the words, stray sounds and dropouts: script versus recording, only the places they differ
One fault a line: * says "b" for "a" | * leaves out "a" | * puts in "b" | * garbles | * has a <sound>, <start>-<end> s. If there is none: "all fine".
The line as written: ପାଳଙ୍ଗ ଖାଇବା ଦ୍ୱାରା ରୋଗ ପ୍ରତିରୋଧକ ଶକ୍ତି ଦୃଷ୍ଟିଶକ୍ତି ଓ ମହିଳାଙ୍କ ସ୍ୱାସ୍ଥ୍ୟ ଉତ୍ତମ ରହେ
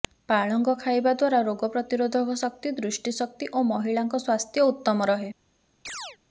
* has a chirp, 5.9-6.2 s